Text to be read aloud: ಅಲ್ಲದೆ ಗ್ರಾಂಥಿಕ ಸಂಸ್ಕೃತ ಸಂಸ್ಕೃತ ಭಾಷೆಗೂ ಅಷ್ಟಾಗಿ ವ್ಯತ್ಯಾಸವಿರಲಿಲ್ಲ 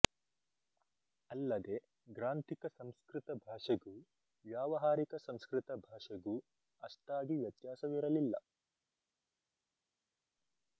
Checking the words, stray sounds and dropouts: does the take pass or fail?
fail